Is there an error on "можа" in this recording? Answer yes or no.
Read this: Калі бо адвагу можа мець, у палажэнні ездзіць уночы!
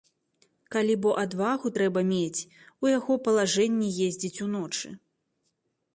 yes